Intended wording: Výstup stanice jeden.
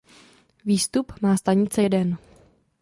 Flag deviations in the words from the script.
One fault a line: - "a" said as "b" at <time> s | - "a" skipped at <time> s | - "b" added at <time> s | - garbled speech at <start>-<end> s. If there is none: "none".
- "má" added at 1.2 s